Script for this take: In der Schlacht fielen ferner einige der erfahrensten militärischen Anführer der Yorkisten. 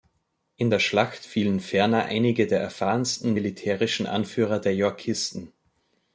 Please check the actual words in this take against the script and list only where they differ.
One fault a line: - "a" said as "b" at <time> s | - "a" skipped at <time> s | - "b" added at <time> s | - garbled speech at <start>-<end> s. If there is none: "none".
none